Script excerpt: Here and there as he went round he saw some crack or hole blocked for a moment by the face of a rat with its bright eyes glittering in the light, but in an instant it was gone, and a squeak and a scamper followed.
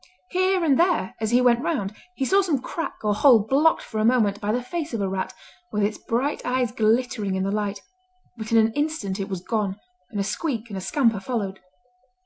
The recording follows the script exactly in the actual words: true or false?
true